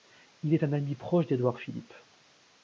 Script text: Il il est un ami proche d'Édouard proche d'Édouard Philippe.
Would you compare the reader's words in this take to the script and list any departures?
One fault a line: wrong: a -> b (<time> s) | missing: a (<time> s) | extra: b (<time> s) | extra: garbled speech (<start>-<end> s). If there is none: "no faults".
missing: il (0.6 s)
missing: proche d'Édouard (1.6 s)